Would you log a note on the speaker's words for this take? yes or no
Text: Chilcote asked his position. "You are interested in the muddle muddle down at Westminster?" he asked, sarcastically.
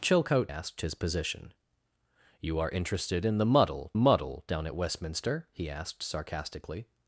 no